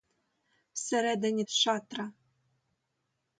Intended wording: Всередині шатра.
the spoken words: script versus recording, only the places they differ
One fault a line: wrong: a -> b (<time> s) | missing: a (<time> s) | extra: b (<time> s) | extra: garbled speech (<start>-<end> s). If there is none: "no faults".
no faults